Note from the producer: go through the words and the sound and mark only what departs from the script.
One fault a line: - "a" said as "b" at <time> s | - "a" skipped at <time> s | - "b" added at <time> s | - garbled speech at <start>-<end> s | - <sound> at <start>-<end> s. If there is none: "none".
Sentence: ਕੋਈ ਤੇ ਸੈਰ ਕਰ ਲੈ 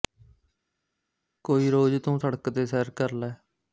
- "ਰੋਜ਼ ਤੂੰ ਸੜਕ" added at 1.7 s